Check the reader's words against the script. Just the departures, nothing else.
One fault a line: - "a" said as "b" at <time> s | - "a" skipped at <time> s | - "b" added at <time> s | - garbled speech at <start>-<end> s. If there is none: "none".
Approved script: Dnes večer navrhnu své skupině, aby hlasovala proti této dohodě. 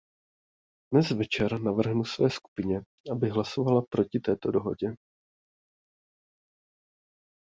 none